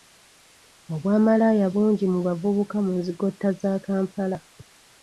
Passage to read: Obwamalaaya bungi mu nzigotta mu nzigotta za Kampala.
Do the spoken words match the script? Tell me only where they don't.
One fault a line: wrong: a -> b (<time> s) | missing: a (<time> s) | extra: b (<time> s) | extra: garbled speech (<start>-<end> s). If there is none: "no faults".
wrong: nzigotta -> bavubuka (2.3 s)